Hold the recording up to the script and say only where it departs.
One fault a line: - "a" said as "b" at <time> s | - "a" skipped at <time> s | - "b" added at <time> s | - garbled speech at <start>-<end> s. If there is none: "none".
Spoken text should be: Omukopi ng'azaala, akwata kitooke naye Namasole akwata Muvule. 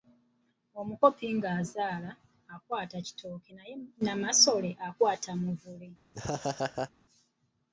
none